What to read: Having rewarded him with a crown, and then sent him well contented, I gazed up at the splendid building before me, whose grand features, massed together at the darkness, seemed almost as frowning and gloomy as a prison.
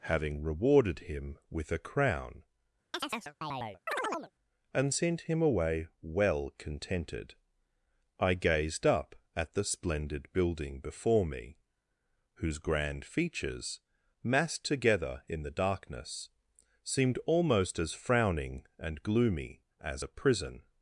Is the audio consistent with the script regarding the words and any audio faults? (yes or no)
no